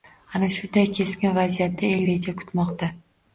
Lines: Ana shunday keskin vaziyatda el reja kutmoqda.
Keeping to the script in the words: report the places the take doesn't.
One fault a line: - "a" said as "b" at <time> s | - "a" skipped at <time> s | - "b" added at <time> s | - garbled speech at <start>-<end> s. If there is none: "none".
none